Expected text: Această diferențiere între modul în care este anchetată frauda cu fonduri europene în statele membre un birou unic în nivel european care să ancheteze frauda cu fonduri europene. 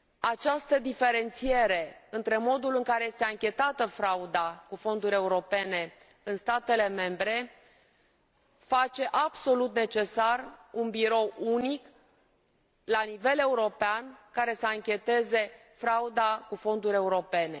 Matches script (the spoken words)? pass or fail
fail